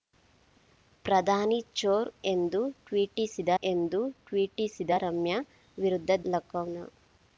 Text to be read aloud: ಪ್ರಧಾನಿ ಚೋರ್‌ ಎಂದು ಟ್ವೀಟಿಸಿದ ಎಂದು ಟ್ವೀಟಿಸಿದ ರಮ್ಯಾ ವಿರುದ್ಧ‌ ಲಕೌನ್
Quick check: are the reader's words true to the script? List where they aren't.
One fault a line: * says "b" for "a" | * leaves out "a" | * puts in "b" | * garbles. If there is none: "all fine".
all fine